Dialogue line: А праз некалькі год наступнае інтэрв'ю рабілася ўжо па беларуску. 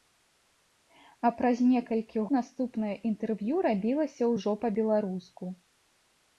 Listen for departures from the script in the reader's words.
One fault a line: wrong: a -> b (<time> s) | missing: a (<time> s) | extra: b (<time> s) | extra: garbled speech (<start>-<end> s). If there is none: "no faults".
missing: год (2.2 s)